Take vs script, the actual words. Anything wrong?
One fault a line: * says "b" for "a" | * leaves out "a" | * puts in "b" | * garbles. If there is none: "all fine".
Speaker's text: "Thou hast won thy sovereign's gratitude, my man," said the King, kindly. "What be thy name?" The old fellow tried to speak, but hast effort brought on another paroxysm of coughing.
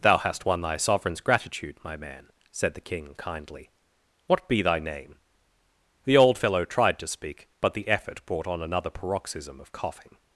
* says "the" for "hast"